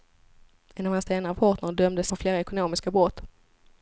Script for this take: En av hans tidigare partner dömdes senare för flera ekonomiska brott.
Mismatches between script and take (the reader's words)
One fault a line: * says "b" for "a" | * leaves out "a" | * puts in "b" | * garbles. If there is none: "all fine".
* says "senare" for "tidigare"
* leaves out "senare"